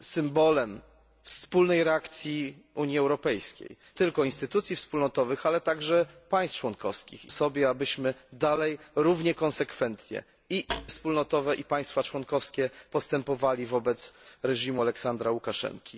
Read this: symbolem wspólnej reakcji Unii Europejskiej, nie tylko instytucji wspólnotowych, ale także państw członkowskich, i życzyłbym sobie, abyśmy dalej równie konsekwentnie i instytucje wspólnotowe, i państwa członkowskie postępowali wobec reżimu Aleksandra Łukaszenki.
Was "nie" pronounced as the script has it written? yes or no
no